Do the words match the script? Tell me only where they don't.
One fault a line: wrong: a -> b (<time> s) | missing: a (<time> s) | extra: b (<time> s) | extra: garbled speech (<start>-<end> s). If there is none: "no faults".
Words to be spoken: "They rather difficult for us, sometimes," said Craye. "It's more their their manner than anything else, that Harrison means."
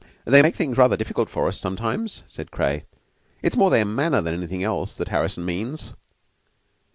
extra: make things (0.4 s)
missing: their (3.8 s)